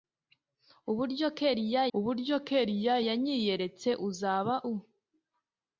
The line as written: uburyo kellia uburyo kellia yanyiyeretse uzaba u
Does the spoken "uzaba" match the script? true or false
true